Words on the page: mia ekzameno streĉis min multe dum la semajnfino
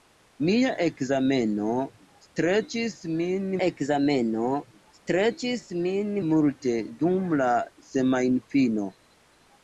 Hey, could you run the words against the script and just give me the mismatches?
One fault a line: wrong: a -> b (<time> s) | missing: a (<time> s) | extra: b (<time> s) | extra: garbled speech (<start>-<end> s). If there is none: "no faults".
extra: ekzameno streĉis min (3.7 s)